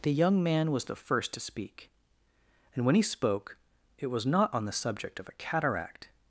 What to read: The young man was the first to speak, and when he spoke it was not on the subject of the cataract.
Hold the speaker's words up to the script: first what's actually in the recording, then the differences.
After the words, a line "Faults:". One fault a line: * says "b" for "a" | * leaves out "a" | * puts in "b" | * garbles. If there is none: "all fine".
The young man was the first to speak, and when he spoke it was not on the subject of a cataract.
Faults:
* says "a" for "the"